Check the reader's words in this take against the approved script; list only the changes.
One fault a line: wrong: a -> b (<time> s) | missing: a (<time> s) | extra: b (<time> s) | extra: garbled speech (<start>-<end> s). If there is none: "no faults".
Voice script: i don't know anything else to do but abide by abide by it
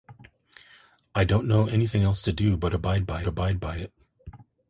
no faults